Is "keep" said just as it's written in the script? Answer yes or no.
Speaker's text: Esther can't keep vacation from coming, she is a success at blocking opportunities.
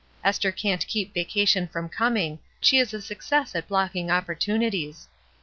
yes